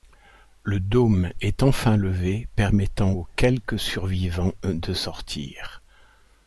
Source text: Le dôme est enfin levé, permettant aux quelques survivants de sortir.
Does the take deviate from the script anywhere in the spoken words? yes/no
no